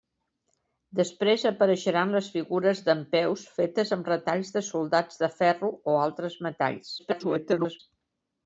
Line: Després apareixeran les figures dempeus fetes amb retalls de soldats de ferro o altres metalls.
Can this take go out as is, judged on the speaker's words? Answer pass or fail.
fail